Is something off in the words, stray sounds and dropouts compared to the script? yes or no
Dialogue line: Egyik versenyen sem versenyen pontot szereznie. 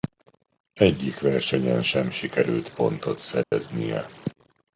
yes